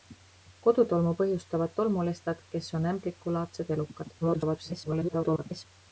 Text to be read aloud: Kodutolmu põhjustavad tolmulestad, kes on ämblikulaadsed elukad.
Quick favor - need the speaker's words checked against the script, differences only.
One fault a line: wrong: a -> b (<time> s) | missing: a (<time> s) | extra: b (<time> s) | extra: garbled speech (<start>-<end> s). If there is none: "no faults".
extra: garbled speech (4.2-5.7 s)